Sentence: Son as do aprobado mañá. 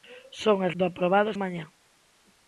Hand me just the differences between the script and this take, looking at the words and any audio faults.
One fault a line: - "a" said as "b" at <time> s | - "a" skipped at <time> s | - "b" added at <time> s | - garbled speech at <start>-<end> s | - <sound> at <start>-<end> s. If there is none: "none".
none